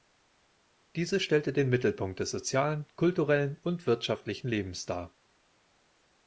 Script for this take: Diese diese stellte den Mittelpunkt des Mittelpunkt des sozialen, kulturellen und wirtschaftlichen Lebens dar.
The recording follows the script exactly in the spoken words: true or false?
false